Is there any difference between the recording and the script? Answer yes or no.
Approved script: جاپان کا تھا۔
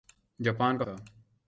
no